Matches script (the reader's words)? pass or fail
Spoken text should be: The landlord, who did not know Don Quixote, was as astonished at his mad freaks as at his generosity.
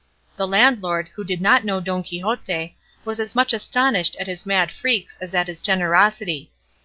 fail